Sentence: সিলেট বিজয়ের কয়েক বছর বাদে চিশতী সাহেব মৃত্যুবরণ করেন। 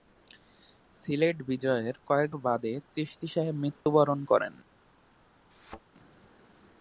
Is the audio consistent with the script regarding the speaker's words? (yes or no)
no